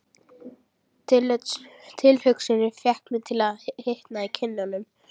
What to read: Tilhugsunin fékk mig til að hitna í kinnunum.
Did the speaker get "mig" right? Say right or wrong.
right